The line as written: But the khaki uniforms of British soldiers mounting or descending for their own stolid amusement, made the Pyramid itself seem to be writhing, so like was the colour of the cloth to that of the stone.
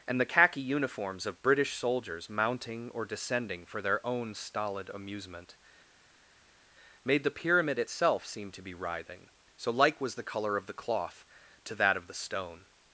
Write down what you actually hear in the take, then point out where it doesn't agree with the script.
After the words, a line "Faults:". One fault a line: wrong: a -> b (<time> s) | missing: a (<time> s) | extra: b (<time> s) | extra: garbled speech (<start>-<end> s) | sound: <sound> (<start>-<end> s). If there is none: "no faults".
And the khaki uniforms of British soldiers mounting or descending for their own stolid amusement, made the Pyramid itself seem to be writhing, so like was the colour of the cloth to that of the stone.
Faults:
wrong: But -> And (0.1 s)